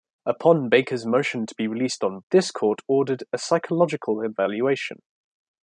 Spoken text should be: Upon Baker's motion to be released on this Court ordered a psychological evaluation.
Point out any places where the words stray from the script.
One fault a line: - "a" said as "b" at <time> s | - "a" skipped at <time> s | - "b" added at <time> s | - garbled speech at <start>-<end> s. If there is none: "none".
none